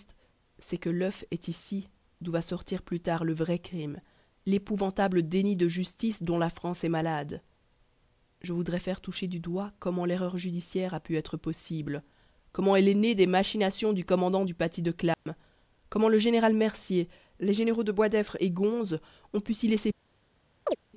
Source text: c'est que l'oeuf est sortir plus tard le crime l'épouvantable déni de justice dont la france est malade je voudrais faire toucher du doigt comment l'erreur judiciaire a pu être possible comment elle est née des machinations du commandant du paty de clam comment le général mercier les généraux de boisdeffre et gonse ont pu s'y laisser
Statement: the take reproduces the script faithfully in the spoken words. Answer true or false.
false